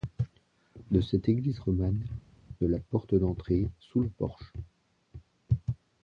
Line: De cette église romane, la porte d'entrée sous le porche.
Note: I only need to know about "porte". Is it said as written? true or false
true